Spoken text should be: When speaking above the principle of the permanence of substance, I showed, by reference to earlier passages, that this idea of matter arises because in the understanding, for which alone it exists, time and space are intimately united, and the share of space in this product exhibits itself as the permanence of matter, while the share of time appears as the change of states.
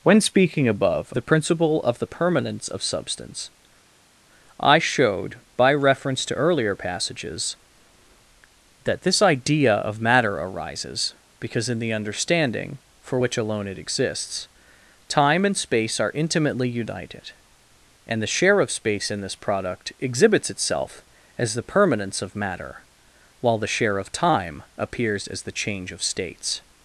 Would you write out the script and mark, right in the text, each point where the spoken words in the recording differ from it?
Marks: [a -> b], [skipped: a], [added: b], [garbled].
When speaking above the principle of the permanence of substance, I showed, by reference to earlier passages, that this idea of matter arises because in the understanding, for which alone it exists, time and space are intimately united, and the share of space in this product exhibits itself as the permanence of matter, while the share of time appears as the change of states.